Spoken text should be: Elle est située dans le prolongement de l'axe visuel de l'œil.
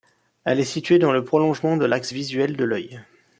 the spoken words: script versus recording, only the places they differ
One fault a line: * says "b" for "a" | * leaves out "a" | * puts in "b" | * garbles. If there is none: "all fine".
all fine